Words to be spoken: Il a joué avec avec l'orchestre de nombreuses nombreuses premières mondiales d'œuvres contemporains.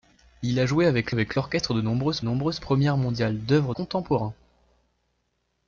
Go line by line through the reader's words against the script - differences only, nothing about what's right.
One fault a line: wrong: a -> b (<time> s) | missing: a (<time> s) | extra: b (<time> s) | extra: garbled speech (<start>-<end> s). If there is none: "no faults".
no faults